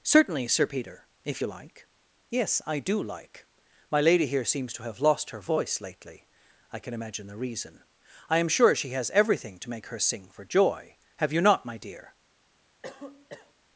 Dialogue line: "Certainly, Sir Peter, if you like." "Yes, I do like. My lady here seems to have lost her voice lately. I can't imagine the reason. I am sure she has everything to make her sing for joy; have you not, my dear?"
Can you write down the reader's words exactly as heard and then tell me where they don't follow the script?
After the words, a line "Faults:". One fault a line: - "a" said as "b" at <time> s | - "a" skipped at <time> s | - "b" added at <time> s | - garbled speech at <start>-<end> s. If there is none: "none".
"Certainly, Sir Peter, if you like." "Yes, I do like. My lady here seems to have lost her voice lately. I can imagine the reason. I am sure she has everything to make her sing for joy; have you not, my dear?"
Faults:
- "can't" said as "can" at 6.8 s